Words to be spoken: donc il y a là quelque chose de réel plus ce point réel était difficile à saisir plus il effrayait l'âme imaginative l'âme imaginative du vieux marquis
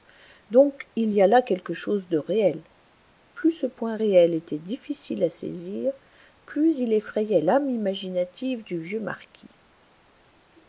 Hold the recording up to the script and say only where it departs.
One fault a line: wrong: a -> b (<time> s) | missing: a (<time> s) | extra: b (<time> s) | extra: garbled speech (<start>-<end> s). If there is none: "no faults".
missing: l'âme imaginative (8.6 s)